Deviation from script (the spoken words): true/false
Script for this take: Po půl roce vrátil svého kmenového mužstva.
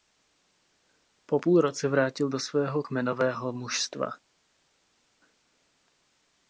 true